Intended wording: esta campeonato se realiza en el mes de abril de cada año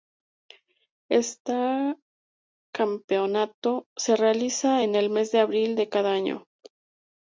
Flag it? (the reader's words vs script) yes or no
no